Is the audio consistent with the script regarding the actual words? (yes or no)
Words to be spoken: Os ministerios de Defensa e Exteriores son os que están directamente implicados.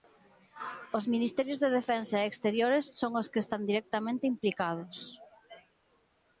yes